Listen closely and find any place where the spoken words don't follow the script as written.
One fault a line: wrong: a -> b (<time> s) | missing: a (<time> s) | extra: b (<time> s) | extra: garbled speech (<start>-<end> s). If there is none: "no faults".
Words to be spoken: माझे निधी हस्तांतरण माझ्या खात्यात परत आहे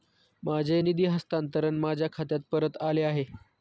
extra: आले (2.8 s)